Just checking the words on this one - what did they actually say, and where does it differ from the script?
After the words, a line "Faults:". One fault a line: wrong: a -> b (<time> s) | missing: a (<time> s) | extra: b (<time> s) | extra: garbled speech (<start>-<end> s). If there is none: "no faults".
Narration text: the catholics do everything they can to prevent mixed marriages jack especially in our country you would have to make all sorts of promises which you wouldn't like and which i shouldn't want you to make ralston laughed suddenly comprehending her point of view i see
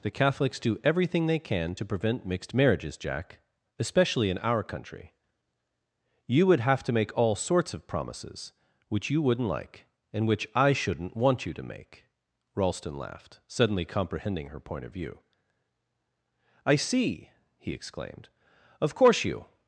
the catholics do everything they can to prevent mixed marriages jack especially in our country you would have to make all sorts of promises which you wouldn't like and which i shouldn't want you to make ralston laughed suddenly comprehending her point of view i see he exclaimed of course you
Faults:
extra: he exclaimed of course you (17.6 s)